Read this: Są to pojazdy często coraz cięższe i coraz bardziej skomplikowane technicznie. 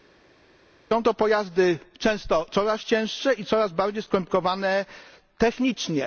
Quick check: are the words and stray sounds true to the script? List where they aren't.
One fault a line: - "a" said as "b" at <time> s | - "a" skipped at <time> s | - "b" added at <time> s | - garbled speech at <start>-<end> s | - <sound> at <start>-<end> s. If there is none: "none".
none